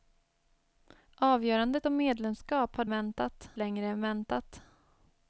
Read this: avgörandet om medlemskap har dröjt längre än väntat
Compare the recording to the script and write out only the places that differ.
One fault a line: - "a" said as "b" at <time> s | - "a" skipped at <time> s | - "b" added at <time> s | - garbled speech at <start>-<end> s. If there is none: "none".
- "dröjt" said as "väntat" at 2.9 s